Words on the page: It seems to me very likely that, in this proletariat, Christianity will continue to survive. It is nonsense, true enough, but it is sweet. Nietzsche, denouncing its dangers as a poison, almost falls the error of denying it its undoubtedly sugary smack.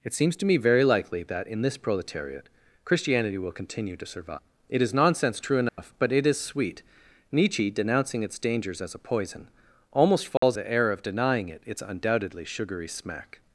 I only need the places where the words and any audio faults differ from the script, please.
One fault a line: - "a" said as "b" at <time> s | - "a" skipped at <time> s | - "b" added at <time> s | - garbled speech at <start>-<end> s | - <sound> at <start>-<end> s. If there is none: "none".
- dropout at 5.7-5.8 s
- dropout at 10.4-10.4 s